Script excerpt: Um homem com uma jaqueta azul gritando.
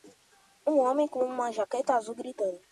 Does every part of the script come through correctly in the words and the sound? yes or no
yes